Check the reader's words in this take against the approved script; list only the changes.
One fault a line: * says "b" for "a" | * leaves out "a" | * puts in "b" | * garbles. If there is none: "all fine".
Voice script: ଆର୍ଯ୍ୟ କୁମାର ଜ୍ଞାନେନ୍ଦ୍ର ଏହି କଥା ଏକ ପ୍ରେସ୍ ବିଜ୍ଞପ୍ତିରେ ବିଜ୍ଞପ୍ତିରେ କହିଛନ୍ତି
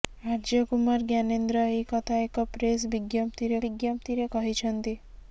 all fine